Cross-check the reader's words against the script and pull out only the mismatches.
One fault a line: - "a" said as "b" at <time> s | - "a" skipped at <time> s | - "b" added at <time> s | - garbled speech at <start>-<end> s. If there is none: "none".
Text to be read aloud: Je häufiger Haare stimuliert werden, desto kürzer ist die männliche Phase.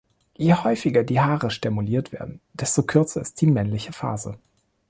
- "die" added at 1.0 s